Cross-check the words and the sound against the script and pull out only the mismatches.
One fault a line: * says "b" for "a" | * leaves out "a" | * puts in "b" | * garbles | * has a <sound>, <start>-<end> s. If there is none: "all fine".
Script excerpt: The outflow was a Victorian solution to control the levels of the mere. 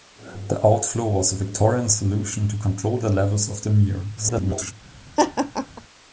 * garbles
* has a laugh, 5.2-5.8 s